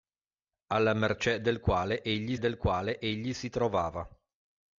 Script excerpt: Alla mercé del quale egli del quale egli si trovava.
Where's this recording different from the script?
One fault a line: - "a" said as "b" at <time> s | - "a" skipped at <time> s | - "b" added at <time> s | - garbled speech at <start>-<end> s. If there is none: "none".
none